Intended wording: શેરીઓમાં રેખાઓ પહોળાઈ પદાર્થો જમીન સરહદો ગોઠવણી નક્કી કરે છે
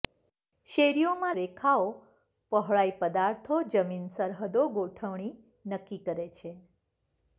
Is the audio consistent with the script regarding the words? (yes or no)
yes